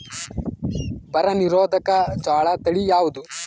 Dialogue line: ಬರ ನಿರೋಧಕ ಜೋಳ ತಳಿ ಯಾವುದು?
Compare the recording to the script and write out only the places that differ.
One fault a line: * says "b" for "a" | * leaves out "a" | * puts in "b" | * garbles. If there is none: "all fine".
all fine